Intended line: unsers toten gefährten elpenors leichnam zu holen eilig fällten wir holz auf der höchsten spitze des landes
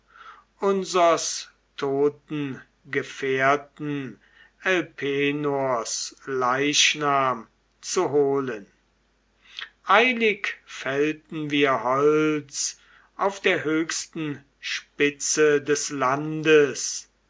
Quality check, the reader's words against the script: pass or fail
pass